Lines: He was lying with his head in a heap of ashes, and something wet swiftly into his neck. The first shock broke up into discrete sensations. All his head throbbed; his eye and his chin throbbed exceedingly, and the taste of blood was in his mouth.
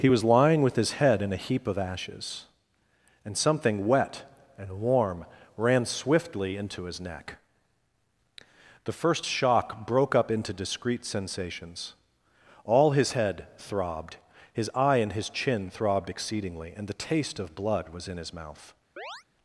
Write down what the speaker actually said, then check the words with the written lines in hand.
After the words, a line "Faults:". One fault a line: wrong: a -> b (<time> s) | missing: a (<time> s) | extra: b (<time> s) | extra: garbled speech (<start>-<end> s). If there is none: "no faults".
He was lying with his head in a heap of ashes, and something wet and warm ran swiftly into his neck. The first shock broke up into discrete sensations. All his head throbbed; his eye and his chin throbbed exceedingly, and the taste of blood was in his mouth.
Faults:
extra: and warm ran (4.6 s)